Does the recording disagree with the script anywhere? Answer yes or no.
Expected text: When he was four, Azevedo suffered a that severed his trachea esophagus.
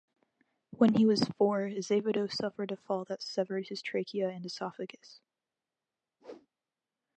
yes